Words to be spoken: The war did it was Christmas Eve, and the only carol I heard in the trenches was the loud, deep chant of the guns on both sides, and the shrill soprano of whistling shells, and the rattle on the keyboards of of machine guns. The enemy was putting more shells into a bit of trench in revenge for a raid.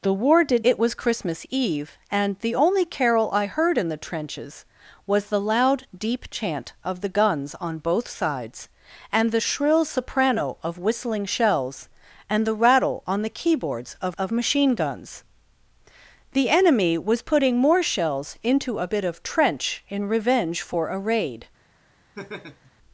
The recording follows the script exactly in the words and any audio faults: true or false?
false